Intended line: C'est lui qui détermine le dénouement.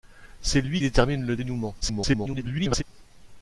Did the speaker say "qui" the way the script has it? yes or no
no